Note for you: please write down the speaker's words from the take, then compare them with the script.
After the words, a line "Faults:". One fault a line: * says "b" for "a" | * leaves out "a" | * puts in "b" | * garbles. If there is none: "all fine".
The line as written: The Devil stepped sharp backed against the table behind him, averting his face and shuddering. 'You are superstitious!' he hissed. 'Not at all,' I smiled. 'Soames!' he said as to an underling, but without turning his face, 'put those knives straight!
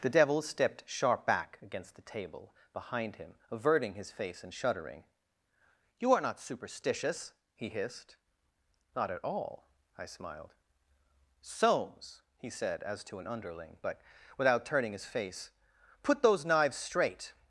The Devil stepped sharp back against the table behind him, averting his face and shuddering. 'You are not superstitious!' he hissed. 'Not at all,' I smiled. 'Soames!' he said as to an underling, but without turning his face, 'put those knives straight!
Faults:
* says "back" for "backed"
* puts in "not"